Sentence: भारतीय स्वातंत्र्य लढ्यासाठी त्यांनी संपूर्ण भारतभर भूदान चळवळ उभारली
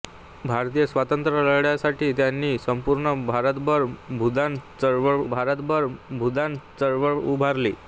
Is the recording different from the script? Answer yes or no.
yes